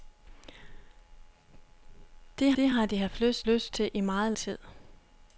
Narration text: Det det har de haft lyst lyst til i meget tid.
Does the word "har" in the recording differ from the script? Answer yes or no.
no